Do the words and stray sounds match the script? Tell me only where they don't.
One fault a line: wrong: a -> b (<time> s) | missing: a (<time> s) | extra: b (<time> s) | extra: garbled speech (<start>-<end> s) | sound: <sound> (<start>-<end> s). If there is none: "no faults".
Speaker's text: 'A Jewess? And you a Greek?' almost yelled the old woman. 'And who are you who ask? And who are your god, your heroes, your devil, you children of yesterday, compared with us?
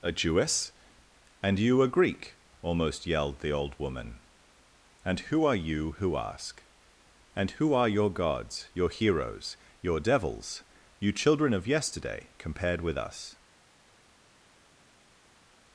wrong: god -> gods (8.1 s)
wrong: devil -> devils (10.0 s)